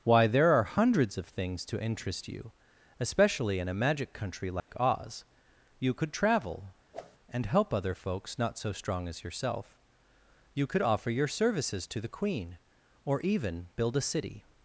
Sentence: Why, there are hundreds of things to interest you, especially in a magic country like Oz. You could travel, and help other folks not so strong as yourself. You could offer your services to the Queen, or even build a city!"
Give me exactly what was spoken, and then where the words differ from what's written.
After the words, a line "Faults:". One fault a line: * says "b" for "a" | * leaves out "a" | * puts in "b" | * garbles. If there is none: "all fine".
Why, there are hundreds of things to interest you, especially in a magic country like Oz. You could travel, and help other folks not so strong as yourself. You could offer your services to the Queen, or even build a city!"
Faults:
all fine